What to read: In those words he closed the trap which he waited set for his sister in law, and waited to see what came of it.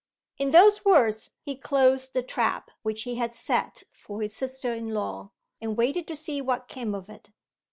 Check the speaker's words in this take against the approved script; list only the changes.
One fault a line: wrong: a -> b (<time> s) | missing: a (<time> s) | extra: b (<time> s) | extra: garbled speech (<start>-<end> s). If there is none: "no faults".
wrong: waited -> had (3.2 s)